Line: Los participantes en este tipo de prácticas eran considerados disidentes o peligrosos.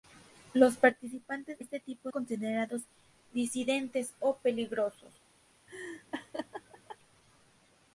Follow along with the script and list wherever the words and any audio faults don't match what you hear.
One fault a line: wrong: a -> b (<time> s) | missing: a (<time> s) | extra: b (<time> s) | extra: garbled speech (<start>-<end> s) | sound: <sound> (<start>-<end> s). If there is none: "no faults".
missing: en (1.6 s)
missing: de prácticas eran (2.1 s)
sound: laugh (5.7-7.0 s)